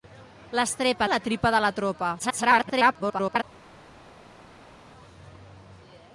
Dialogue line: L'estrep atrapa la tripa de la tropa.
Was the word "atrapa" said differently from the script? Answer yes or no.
yes